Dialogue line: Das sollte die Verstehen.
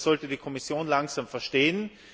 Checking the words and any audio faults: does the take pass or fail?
fail